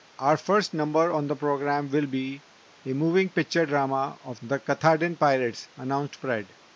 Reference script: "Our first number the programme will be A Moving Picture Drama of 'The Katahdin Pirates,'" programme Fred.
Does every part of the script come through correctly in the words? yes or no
no